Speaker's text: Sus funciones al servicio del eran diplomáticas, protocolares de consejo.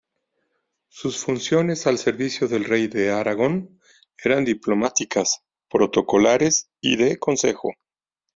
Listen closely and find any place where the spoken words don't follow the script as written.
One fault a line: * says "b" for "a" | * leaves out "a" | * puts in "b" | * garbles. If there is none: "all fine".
* puts in "rey de Aragón"
* puts in "y"